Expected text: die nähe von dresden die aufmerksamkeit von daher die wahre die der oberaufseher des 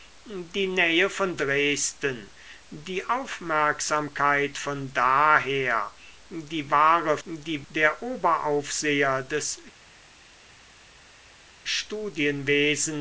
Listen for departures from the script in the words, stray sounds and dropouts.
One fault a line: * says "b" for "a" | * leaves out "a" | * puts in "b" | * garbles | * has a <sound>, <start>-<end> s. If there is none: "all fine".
all fine